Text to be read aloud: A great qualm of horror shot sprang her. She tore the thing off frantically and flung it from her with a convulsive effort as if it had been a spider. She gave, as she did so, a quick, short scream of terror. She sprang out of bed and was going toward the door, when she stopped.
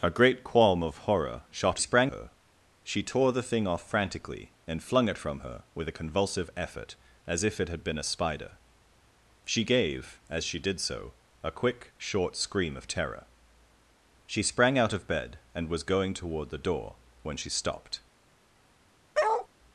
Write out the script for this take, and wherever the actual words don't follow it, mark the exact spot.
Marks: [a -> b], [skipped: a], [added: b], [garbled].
A great qualm of horror shot sprang her. She tore the thing off frantically and flung it from her with a convulsive effort as if it had been a spider. She gave, as she did so, a quick, short scream of terror. She sprang out of bed and was going toward the door, when she stopped.